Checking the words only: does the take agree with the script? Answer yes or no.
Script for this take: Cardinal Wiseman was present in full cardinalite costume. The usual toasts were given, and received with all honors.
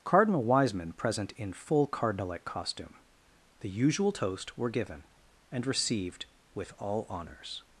no